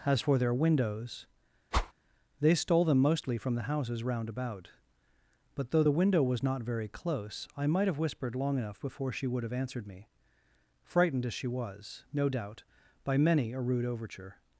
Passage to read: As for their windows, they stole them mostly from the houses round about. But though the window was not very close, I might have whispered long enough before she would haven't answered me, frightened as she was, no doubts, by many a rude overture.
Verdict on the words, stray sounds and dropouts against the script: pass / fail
fail